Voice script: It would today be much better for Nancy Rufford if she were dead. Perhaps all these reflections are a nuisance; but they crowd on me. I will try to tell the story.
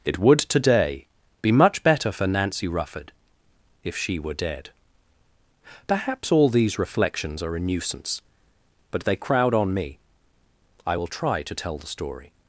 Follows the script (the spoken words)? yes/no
yes